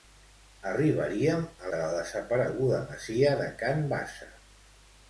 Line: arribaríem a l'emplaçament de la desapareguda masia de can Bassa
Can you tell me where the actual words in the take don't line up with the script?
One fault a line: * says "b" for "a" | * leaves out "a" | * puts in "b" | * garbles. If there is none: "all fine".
* leaves out "l'emplaçament"